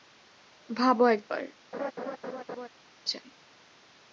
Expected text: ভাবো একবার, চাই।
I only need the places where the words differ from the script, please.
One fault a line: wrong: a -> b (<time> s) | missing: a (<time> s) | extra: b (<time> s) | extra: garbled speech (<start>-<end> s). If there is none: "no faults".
no faults